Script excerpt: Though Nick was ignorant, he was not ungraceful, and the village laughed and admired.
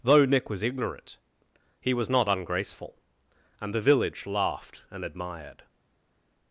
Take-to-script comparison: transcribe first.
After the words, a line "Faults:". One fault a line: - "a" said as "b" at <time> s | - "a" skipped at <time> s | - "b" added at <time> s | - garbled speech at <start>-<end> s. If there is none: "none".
Though Nick was ignorant, he was not ungraceful, and the village laughed and admired.
Faults:
none